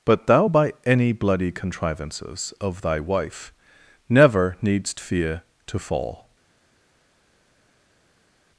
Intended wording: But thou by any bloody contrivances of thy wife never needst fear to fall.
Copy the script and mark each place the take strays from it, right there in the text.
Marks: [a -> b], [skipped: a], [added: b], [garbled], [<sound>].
But thou by any bloody contrivances of thy wife never needst fear to fall.